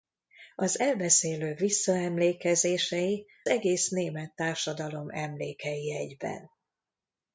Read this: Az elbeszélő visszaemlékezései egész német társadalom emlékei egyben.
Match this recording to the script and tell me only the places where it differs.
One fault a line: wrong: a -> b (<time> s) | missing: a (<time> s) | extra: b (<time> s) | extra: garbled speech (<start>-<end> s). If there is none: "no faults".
no faults